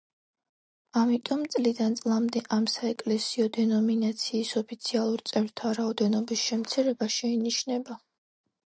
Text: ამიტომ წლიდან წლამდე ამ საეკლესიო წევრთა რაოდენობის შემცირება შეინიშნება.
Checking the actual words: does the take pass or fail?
fail